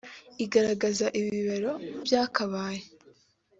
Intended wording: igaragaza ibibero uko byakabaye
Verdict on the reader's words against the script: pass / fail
fail